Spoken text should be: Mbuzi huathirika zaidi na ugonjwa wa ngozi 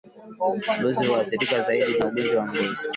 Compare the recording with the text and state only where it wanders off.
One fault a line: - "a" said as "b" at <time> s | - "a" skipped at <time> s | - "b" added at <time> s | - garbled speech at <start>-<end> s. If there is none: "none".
none